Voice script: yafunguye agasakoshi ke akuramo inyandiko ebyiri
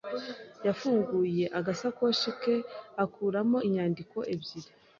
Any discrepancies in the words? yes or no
no